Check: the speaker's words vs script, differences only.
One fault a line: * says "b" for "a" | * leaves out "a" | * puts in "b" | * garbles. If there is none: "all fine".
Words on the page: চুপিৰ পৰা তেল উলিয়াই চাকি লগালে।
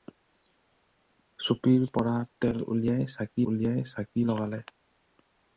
* puts in "উলিয়াই চাকি"